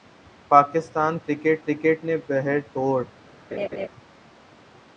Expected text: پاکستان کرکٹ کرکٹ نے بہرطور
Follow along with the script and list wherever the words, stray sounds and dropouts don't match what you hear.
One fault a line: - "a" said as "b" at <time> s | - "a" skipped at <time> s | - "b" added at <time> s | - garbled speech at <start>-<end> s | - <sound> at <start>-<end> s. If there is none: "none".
- laugh at 3.5-3.9 s